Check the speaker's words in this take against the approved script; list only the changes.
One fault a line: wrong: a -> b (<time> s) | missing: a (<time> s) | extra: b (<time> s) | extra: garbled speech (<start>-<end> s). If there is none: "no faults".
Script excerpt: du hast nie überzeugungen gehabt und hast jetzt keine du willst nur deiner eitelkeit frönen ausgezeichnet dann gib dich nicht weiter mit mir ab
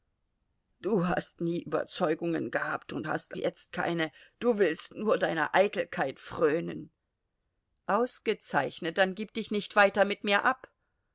no faults